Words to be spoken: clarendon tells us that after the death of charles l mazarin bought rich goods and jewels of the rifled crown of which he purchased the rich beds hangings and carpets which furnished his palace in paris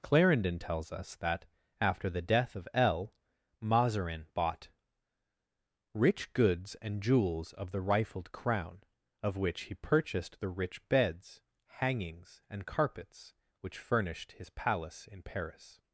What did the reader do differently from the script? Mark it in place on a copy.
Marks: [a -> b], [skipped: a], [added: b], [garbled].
clarendon tells us that after the death of [skipped: charles] l mazarin bought rich goods and jewels of the rifled crown of which he purchased the rich beds hangings and carpets which furnished his palace in paris